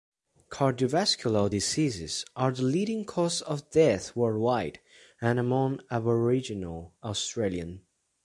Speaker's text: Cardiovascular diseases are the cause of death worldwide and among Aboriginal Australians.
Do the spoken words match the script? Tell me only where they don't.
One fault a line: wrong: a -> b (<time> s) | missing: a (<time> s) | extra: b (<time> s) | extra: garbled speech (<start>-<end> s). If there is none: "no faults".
extra: leading (2.6 s)